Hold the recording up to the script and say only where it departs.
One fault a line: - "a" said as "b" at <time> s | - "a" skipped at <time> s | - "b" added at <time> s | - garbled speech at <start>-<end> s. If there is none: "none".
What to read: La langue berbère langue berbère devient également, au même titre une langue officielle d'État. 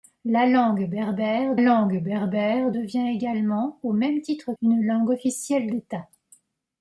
none